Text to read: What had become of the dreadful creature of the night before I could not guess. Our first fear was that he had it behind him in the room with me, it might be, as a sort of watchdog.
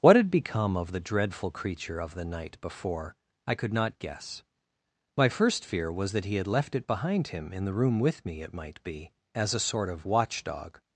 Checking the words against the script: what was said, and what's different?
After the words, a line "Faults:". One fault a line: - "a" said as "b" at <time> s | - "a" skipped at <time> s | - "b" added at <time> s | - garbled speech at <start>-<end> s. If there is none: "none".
What had become of the dreadful creature of the night before I could not guess. My first fear was that he had left it behind him in the room with me, it might be, as a sort of watchdog.
Faults:
- "Our" said as "My" at 5.2 s
- "left" added at 6.5 s